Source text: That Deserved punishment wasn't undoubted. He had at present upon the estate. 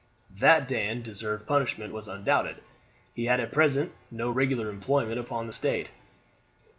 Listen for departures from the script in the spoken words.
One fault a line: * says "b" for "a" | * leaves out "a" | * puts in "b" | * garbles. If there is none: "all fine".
* puts in "Dan"
* says "was" for "wasn't"
* puts in "no regular employment"